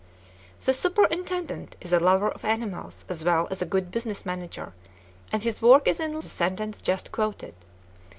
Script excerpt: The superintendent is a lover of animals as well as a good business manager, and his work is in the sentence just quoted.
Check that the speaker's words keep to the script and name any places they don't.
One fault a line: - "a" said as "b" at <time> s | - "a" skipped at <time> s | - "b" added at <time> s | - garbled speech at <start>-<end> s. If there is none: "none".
none